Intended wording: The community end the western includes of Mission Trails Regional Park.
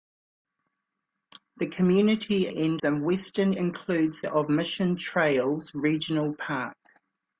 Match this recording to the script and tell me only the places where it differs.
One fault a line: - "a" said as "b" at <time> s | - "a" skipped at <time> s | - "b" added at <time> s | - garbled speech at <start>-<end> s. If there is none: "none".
none